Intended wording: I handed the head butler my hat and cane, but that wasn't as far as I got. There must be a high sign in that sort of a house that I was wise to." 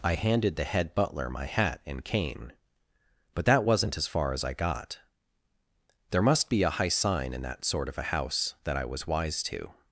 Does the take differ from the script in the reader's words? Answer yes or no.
no